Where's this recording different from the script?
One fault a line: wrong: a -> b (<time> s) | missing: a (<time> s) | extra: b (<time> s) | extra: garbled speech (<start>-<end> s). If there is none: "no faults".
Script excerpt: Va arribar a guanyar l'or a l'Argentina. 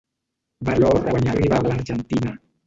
wrong: arribar -> l'or (0.8 s)
wrong: l'or -> arribar (1.3 s)